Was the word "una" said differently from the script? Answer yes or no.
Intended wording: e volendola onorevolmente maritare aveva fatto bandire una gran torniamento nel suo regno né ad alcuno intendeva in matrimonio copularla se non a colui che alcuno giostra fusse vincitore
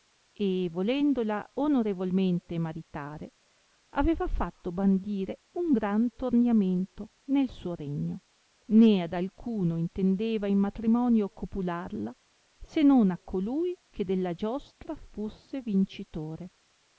yes